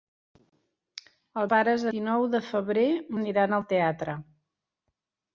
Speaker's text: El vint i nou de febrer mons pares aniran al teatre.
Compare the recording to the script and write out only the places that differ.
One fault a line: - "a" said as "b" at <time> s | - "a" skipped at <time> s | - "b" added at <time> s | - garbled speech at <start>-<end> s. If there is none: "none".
- "vint" said as "pares" at 1.5 s
- "mons pares" skipped at 2.8 s